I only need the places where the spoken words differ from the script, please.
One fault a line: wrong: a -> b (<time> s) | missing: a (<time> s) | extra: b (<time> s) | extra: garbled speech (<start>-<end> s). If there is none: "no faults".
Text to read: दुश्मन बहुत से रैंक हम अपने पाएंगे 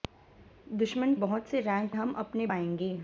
no faults